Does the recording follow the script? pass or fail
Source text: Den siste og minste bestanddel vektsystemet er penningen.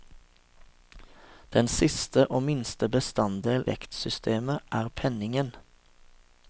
pass